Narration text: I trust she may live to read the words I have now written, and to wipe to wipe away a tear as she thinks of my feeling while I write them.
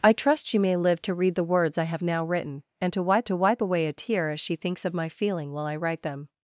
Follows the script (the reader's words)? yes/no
yes